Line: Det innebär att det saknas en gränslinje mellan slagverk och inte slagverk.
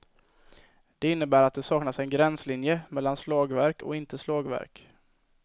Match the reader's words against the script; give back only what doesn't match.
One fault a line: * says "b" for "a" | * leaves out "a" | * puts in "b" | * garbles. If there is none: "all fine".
all fine